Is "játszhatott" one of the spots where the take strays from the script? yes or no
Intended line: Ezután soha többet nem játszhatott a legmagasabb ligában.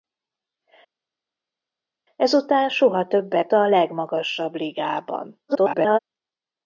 yes